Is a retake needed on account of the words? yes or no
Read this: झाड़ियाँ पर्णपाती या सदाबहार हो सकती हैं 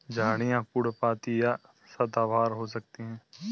no